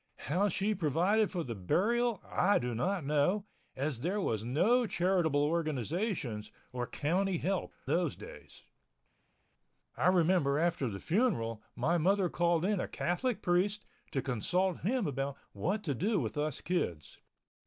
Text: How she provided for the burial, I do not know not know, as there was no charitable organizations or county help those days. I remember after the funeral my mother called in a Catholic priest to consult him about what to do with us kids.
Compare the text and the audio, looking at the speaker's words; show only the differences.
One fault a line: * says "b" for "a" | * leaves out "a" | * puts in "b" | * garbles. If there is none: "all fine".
* leaves out "not know"